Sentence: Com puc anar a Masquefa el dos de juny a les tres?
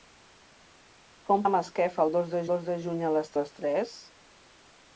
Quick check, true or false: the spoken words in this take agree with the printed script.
false